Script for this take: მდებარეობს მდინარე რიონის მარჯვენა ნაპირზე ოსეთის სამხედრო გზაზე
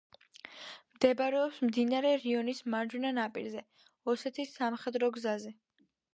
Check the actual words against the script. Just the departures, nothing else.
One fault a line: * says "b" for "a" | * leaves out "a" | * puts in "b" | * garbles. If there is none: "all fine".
all fine